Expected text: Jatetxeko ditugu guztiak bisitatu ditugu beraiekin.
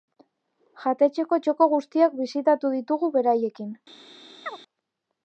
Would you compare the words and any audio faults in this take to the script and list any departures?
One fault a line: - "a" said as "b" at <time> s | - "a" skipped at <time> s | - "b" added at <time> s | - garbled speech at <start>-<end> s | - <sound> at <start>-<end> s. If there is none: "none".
- "ditugu" said as "txoko" at 1.5 s
- chirp at 4.4-4.6 s